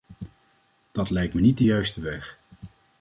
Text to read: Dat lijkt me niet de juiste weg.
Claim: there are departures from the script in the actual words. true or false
false